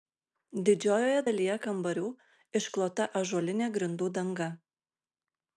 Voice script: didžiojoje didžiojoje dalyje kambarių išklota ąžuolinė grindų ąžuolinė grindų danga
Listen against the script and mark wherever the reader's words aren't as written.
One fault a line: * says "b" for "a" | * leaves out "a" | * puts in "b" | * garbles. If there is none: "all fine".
* leaves out "didžiojoje"
* leaves out "ąžuolinė grindų"